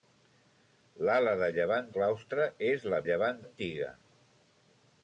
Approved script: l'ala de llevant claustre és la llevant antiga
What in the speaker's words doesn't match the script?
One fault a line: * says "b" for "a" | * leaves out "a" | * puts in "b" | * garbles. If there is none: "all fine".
all fine